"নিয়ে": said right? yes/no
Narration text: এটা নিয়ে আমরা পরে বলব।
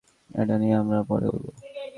yes